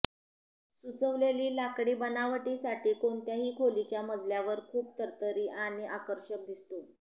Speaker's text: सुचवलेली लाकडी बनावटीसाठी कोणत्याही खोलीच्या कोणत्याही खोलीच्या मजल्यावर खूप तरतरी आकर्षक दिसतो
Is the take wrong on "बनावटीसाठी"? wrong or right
right